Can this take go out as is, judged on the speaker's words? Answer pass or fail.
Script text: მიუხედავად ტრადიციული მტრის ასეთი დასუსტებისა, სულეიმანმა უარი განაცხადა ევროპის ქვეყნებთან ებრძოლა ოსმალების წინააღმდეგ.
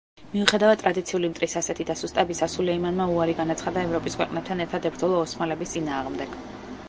fail